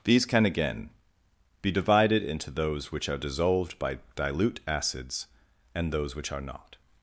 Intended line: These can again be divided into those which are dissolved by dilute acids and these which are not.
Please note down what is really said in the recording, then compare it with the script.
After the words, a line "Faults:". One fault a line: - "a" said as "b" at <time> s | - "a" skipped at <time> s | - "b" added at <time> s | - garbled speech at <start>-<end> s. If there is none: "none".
These can again be divided into those which are dissolved by dilute acids and those which are not.
Faults:
- "these" said as "those" at 5.9 s